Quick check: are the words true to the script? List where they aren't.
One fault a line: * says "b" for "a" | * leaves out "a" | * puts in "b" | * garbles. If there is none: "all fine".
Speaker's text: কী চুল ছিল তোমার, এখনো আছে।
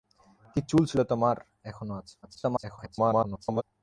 * garbles